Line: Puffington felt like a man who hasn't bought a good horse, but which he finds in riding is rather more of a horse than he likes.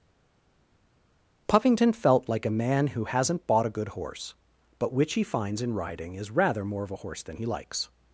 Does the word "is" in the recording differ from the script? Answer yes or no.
no